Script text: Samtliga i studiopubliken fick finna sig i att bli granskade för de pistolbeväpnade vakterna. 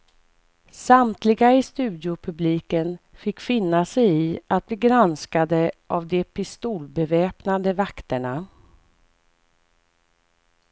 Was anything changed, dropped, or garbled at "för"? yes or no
yes